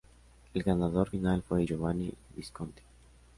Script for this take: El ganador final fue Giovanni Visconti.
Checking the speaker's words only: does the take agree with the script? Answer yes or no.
yes